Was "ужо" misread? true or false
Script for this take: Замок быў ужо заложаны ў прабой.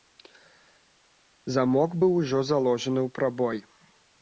false